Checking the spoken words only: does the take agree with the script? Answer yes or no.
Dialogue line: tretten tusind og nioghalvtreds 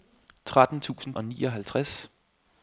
yes